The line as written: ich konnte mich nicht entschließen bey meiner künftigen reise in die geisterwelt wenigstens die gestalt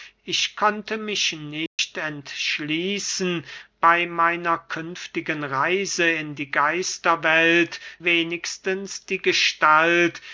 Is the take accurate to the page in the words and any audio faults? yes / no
no